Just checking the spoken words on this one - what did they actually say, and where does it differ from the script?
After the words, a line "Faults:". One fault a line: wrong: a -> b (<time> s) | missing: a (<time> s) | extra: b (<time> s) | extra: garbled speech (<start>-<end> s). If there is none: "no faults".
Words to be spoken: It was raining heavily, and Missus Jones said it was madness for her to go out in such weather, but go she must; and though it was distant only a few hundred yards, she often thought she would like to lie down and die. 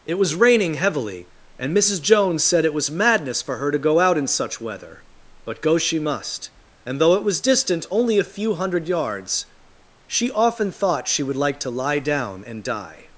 It was raining heavily, and Missus Jones said it was madness for her to go out in such weather, but go she must; and though it was distant only a few hundred yards, she often thought she would like to lie down and die.
Faults:
no faults